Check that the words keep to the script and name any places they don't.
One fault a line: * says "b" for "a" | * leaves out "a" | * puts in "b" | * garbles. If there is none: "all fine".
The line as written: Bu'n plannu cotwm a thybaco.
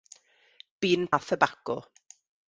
* leaves out "plannu cotwm"